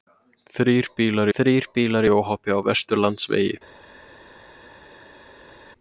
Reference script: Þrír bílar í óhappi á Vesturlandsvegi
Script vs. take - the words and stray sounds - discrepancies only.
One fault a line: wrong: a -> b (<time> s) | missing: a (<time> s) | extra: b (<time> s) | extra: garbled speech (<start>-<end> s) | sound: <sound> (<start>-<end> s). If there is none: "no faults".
extra: þrír bílar (1.3 s)